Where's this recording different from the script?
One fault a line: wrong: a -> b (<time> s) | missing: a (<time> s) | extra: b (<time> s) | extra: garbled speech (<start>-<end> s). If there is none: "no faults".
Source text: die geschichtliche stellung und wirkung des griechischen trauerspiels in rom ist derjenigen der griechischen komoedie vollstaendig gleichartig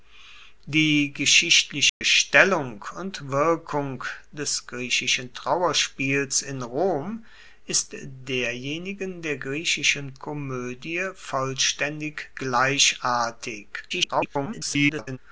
extra: garbled speech (13.9-15.2 s)